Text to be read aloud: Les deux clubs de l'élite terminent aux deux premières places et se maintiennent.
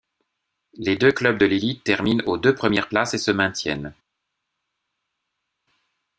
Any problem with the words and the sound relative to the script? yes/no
no